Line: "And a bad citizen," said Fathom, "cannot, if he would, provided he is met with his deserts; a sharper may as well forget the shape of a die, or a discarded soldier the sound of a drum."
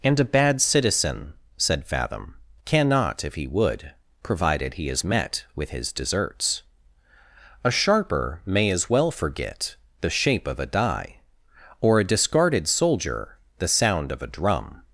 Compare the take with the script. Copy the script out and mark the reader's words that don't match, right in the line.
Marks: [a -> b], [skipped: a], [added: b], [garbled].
"And a bad citizen," said Fathom, "cannot, if he would, provided he is met with his deserts; a sharper may as well forget the shape of a die, or a discarded soldier the sound of a drum."